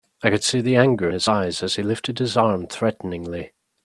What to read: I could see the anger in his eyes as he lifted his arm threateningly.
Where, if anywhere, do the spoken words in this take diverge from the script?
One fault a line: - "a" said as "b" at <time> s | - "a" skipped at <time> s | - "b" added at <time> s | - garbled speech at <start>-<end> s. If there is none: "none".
- "in" skipped at 1.1 s